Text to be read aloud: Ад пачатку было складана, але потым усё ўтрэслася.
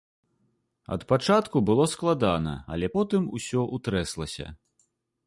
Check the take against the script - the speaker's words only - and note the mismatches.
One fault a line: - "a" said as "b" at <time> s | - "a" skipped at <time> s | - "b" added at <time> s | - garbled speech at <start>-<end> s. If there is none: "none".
none